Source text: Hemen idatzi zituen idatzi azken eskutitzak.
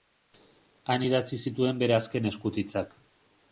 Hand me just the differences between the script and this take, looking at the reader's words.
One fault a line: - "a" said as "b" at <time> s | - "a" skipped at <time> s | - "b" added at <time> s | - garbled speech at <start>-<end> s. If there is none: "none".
- "Hemen" said as "Han" at 0.9 s
- "idatzi" said as "bere" at 1.8 s